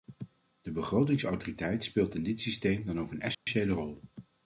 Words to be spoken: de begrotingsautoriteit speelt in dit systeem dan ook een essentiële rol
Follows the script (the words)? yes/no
yes